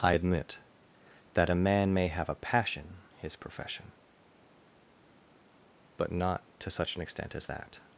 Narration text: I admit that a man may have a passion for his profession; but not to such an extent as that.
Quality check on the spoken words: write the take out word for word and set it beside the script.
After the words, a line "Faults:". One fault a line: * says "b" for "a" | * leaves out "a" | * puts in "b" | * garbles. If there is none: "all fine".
I admit that a man may have a passion his profession; but not to such an extent as that.
Faults:
* leaves out "for"